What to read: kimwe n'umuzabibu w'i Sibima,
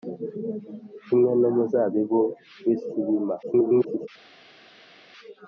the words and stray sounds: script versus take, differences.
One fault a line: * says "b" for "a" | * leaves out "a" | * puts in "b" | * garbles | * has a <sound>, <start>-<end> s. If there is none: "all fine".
* garbles